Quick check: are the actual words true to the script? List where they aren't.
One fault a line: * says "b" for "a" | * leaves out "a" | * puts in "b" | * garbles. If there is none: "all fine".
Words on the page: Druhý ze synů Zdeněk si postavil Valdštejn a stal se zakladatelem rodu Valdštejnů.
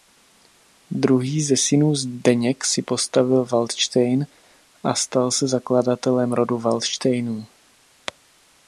all fine